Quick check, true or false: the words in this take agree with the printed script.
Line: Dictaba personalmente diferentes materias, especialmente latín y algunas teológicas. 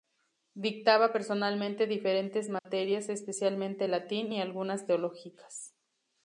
true